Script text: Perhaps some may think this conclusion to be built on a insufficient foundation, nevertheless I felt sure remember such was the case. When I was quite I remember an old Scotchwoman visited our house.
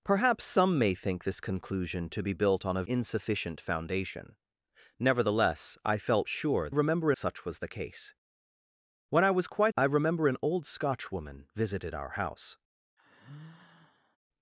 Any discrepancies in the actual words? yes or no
no